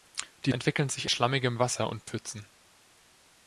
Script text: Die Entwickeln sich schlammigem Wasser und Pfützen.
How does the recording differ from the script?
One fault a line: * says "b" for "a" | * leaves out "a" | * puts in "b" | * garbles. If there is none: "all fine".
all fine